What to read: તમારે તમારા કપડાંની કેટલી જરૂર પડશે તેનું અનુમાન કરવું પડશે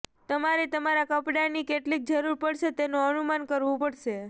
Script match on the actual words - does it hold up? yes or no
yes